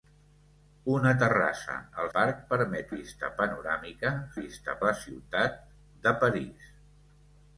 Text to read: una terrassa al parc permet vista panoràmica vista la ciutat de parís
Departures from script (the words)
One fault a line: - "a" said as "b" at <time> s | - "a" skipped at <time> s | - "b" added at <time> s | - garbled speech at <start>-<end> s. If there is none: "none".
none